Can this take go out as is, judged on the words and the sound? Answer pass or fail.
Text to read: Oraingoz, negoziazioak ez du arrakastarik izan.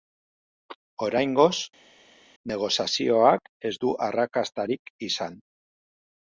pass